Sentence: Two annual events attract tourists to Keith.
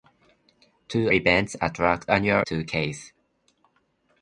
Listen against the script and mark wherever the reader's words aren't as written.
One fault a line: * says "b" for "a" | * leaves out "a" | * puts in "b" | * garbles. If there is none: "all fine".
* leaves out "annual"
* says "annual" for "tourists"